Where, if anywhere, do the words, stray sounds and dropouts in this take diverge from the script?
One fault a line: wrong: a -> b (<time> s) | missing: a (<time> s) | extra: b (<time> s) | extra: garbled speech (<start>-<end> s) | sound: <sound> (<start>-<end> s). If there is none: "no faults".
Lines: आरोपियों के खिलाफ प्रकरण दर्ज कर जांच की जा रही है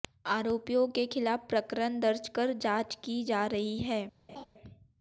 sound: laugh (4.3-4.5 s)